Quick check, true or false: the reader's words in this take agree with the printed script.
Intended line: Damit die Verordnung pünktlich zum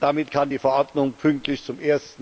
false